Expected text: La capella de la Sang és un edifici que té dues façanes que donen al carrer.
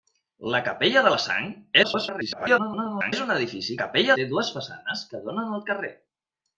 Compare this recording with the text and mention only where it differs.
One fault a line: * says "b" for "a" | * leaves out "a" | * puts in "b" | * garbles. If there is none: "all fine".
* garbles
* says "capella" for "que"